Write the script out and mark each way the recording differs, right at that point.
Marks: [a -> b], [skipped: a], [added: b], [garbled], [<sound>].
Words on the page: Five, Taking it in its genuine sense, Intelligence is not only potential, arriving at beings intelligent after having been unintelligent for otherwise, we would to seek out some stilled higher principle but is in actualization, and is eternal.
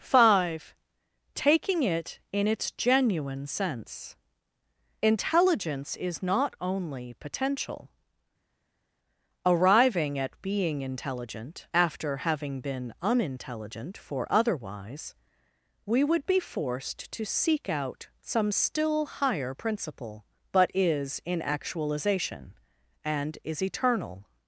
Five, Taking it in its genuine sense, Intelligence is not only potential, arriving at [beings -> being] intelligent after having been unintelligent for otherwise, we would [added: be forced] to seek out some [stilled -> still] higher principle but is in actualization, and is eternal.